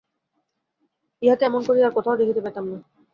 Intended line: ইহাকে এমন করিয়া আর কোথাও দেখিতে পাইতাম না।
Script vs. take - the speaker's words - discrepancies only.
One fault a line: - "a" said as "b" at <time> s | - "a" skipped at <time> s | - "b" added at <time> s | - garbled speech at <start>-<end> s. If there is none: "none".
none